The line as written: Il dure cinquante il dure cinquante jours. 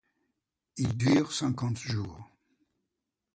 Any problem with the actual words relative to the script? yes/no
yes